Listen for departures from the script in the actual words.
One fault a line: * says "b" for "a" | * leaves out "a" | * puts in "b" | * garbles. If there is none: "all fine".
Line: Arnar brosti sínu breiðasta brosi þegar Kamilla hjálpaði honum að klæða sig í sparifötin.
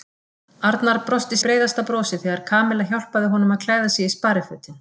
* leaves out "sínu"